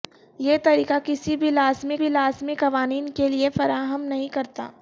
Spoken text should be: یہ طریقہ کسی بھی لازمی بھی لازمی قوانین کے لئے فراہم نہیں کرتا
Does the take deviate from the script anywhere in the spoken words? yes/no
no